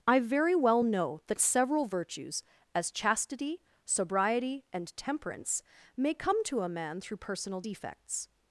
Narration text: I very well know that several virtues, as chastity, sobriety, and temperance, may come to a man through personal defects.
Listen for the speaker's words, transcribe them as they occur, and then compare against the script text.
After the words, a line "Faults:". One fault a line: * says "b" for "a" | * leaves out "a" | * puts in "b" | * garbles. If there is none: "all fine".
I very well know that several virtues, as chastity, sobriety, and temperance, may come to a man through personal defects.
Faults:
all fine